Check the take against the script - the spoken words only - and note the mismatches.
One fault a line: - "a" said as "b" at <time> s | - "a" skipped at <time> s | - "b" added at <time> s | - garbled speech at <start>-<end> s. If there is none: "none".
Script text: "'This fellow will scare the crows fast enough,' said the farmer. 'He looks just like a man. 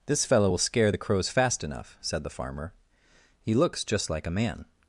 none